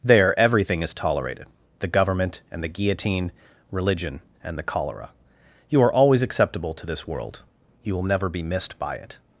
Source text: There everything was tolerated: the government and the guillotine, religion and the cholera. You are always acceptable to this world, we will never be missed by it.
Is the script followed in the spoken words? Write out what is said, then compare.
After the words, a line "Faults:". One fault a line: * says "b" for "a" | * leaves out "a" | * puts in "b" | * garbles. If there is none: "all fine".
There everything is tolerated: the government and the guillotine, religion and the cholera. You are always acceptable to this world, you will never be missed by it.
Faults:
* says "is" for "was"
* says "you" for "we"